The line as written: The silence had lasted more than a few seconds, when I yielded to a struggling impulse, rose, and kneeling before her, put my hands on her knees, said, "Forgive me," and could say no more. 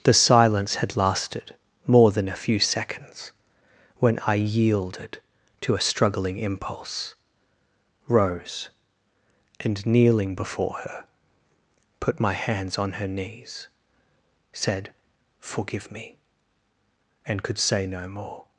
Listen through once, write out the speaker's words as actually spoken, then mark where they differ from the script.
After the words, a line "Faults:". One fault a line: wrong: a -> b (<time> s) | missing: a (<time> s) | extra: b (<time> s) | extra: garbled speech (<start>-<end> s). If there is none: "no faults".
The silence had lasted more than a few seconds, when I yielded to a struggling impulse, rose, and kneeling before her, put my hands on her knees, said, "Forgive me," and could say no more.
Faults:
no faults